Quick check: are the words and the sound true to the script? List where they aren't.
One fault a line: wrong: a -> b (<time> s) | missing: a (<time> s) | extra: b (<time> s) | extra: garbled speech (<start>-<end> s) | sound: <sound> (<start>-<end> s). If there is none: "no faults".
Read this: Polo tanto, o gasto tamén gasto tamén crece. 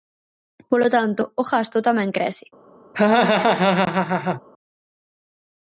missing: gasto tamén (2.1 s)
sound: laugh (2.9-4.4 s)